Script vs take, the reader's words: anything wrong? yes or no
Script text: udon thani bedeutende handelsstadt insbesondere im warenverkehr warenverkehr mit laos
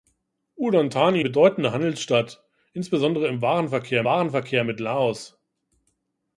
no